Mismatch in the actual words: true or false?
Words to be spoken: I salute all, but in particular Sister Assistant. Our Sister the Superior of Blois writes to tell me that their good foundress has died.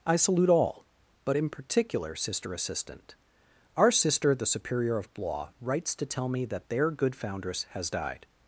false